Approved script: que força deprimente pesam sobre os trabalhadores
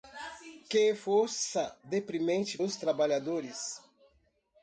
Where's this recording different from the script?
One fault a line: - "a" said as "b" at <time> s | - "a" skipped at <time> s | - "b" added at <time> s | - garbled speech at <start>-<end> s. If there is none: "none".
- "pesam sobre" skipped at 2.6 s